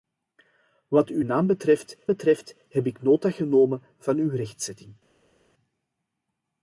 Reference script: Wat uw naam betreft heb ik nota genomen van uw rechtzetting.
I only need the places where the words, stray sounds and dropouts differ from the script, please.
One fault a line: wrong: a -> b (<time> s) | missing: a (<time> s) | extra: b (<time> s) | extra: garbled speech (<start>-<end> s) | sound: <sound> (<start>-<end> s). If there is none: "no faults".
extra: betreft (2.1 s)